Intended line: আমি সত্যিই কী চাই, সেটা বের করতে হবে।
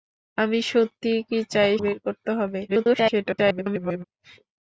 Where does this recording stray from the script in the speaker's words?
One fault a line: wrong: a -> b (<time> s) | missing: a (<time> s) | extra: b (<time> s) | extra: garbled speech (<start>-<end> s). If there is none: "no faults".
missing: সেটা (1.7 s)
extra: garbled speech (2.7-4.0 s)